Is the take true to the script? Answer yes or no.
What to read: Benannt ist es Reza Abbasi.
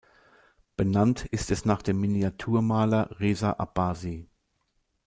no